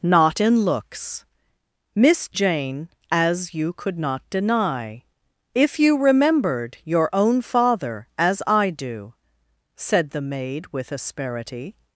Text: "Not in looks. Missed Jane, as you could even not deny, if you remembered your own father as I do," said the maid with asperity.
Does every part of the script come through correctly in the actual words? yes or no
no